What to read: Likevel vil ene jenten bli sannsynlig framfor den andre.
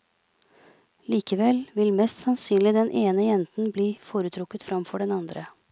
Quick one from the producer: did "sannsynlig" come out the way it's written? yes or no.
no